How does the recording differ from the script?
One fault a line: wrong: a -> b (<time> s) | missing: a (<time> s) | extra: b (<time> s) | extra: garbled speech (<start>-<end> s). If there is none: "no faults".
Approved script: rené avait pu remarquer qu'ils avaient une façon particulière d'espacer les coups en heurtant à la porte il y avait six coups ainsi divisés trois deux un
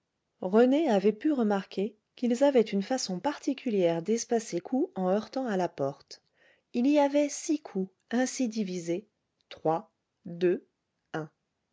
missing: les (4.6 s)